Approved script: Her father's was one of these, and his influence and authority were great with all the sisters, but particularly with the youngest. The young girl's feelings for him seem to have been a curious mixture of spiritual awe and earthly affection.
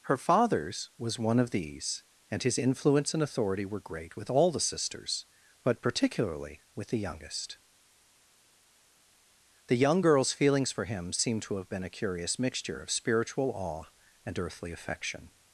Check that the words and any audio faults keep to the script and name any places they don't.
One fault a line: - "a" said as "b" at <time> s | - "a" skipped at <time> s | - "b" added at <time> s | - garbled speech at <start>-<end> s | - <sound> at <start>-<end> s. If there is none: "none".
none